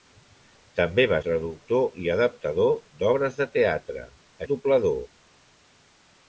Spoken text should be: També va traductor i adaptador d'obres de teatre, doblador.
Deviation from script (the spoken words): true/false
false